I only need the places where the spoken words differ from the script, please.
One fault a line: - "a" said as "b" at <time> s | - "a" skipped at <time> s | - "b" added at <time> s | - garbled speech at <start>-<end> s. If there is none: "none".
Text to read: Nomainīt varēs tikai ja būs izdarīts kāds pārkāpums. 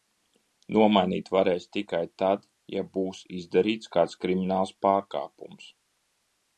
- "tad" added at 2.2 s
- "krimināls" added at 4.2 s